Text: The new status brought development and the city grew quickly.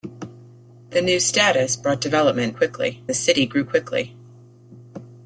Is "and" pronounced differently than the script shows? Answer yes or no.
yes